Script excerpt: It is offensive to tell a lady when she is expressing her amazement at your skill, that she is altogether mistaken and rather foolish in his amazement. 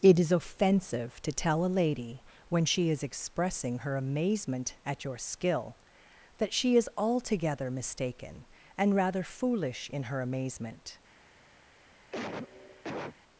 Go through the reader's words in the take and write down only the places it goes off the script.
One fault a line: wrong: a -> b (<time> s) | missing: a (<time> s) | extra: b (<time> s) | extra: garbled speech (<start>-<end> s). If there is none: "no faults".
wrong: his -> her (10.0 s)